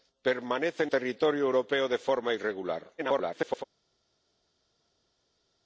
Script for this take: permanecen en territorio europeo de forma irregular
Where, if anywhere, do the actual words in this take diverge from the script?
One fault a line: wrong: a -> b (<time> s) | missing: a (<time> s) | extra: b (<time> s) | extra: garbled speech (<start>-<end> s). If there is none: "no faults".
missing: en (0.9 s)
extra: garbled speech (3.0-3.6 s)